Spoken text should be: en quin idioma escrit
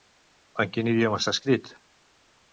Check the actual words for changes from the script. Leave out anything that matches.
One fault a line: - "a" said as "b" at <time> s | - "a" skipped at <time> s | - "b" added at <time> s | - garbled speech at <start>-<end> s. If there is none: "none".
- "està" added at 1.2 s